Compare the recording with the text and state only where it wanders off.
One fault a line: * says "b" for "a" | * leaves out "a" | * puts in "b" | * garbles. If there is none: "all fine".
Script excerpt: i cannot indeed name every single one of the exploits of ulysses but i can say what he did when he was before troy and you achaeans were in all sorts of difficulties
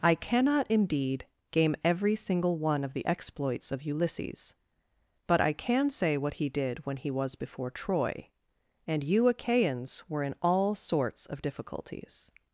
* says "game" for "name"